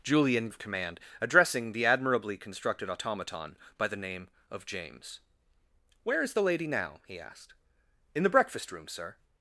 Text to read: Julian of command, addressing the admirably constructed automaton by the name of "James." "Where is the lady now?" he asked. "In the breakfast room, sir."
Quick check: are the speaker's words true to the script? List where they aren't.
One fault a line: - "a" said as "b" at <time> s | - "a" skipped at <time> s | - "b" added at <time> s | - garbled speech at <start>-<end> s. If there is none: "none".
none